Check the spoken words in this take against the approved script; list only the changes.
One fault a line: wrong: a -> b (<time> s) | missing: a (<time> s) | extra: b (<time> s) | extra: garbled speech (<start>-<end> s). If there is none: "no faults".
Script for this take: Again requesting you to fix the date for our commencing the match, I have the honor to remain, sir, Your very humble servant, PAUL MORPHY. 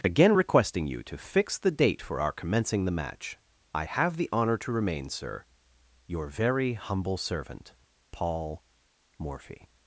no faults